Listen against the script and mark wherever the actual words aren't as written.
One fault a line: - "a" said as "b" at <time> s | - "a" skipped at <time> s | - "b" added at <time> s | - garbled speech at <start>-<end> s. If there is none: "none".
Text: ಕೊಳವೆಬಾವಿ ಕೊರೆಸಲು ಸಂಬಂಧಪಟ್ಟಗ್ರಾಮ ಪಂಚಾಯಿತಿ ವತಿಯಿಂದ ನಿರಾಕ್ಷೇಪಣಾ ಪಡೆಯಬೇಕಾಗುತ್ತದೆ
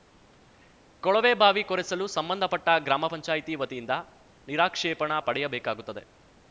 none